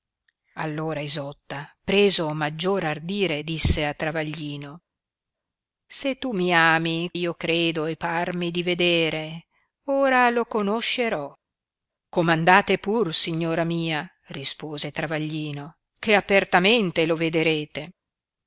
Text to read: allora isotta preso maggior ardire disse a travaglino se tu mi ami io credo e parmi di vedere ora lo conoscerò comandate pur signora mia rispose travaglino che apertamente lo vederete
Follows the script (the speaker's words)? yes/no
yes